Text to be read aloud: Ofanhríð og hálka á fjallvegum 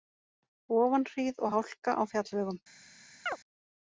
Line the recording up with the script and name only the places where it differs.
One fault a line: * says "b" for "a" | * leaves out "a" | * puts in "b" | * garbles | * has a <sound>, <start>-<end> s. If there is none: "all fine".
* has a chirp, 3.3-3.4 s